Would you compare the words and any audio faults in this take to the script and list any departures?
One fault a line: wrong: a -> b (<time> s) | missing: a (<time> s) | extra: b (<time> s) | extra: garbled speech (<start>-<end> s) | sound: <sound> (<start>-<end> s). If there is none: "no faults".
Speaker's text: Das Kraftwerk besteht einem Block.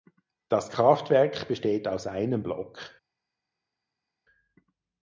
extra: aus (1.9 s)